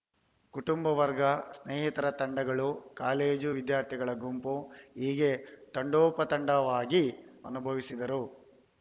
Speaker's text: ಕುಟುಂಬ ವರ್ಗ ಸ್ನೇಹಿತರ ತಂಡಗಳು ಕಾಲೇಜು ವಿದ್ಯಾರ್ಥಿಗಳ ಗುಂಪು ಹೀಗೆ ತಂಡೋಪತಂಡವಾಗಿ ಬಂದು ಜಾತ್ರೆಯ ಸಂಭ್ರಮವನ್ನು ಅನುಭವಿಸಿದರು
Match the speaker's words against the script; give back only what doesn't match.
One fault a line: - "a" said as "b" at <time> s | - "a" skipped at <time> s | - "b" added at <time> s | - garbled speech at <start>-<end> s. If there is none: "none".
- "ಬಂದು ಜಾತ್ರೆಯ ಸಂಭ್ರಮವನ್ನು" skipped at 7.0 s